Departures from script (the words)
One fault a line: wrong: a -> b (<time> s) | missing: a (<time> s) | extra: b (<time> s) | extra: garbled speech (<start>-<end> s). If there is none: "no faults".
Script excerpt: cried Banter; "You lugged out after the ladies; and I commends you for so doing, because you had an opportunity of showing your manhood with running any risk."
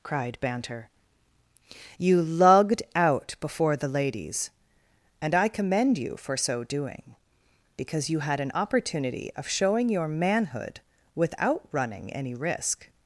wrong: after -> before (3.4 s)
wrong: commends -> commend (5.5 s)
wrong: with -> without (11.1 s)